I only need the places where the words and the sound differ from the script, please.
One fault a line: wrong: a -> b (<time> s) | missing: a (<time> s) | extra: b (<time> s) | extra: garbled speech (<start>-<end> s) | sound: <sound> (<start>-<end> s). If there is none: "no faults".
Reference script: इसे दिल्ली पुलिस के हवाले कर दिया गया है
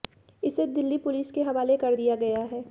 no faults